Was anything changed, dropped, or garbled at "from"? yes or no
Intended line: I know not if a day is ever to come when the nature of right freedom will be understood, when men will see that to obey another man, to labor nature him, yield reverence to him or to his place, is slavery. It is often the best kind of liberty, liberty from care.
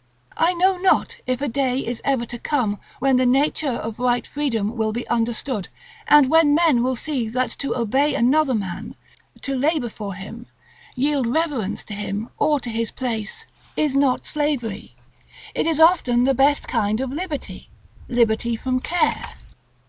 no